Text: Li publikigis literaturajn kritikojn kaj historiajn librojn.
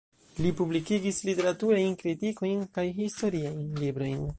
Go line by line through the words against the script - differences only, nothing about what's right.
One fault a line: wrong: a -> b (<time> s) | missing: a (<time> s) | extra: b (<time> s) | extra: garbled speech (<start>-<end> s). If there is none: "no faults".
no faults